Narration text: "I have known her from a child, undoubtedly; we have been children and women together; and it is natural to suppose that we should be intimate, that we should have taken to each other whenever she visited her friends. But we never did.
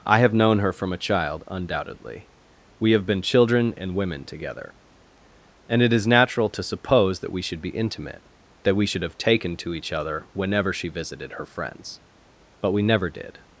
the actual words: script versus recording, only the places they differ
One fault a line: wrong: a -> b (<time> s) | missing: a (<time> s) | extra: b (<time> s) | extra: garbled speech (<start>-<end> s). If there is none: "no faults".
no faults